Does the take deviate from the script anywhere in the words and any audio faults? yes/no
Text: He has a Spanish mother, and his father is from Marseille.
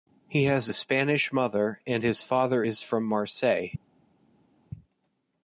no